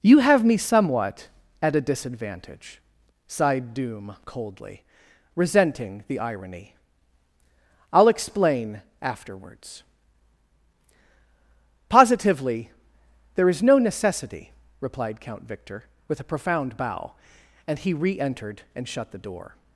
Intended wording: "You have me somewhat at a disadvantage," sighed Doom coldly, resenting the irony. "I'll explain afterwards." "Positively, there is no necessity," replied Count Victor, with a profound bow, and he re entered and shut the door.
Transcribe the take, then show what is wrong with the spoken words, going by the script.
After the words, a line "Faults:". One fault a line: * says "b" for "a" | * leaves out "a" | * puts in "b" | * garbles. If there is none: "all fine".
"You have me somewhat at a disadvantage," sighed Doom coldly, resenting the irony. "I'll explain afterwards." "Positively, there is no necessity," replied Count Victor, with a profound bow, and he re entered and shut the door.
Faults:
all fine